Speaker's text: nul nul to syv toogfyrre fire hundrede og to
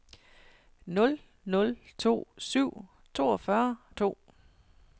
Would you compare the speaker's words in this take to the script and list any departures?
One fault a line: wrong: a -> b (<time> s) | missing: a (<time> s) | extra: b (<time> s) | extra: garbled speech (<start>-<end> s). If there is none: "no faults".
missing: fire hundrede (3.8 s)